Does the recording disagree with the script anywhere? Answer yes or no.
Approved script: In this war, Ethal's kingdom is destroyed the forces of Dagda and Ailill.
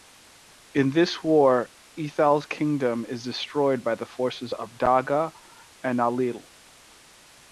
yes